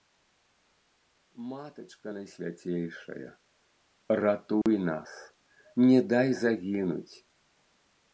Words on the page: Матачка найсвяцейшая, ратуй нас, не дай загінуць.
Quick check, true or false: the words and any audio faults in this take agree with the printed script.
false